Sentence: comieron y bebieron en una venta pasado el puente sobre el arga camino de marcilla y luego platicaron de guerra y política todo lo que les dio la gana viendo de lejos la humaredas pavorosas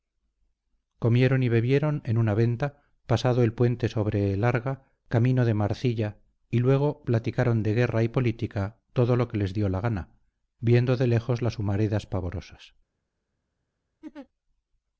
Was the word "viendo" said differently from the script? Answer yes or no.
no